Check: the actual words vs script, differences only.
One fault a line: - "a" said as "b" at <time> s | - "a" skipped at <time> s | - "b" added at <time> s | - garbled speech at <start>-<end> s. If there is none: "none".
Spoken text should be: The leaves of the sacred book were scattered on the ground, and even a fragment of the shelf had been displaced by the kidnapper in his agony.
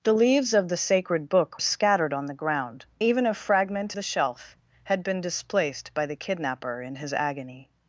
- "were" skipped at 1.6 s
- "and" skipped at 2.8 s
- "of" skipped at 3.9 s